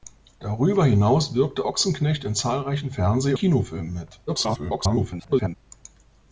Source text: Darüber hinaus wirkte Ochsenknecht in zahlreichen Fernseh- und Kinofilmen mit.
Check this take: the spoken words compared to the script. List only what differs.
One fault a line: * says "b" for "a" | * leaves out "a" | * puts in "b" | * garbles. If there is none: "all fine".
* leaves out "und"
* garbles